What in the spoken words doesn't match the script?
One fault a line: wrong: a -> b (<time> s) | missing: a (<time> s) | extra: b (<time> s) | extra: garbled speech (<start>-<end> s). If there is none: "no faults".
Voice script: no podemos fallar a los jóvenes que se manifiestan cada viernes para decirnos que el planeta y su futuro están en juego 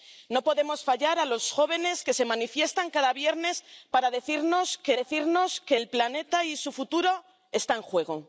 extra: decirnos que (4.9 s)